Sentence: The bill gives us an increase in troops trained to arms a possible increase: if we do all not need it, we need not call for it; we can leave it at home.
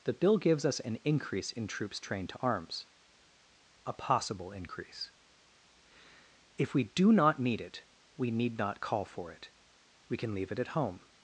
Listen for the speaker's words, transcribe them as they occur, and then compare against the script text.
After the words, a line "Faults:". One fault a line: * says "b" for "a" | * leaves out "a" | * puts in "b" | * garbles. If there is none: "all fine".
The bill gives us an increase in troops trained to arms a possible increase: if we do not need it, we need not call for it; we can leave it at home.
Faults:
* leaves out "all"